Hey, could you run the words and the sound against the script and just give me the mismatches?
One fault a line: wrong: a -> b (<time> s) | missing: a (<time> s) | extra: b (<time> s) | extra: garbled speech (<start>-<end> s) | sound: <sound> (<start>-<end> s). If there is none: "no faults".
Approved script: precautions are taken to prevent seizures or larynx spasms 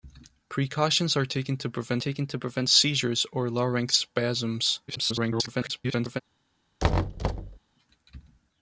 extra: taken to prevent (2.0 s)
extra: garbled speech (4.9-6.2 s)
sound: thud (6.8-7.6 s)